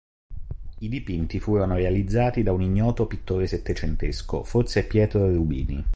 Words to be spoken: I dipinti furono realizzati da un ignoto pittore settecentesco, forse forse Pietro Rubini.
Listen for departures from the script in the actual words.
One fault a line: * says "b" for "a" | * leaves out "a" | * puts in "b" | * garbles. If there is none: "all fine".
* leaves out "forse"